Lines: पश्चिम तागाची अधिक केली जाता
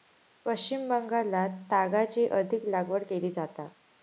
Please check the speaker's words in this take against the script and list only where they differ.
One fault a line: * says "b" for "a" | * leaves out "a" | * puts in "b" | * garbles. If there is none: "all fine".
* puts in "बंगालात"
* puts in "लागवड"